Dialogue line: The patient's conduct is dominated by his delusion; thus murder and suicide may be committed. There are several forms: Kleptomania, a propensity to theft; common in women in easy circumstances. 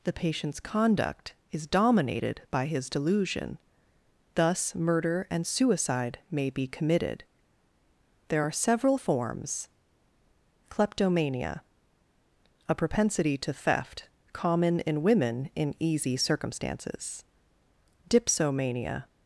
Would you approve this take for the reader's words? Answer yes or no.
no